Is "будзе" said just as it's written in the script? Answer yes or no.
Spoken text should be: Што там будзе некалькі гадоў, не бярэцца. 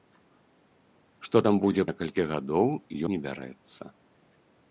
yes